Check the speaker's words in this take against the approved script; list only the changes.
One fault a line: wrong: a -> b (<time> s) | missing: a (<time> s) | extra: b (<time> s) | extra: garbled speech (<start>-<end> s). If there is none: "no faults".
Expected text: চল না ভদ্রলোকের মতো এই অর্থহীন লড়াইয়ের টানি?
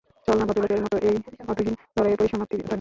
extra: পরিসমাপ্তি (2.2 s)